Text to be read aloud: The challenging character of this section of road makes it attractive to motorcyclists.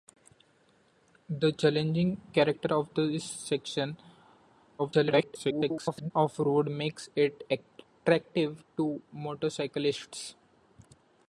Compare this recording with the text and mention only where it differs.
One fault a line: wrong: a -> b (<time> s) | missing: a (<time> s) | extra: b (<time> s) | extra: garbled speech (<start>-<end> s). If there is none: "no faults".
extra: garbled speech (4.8-6.1 s)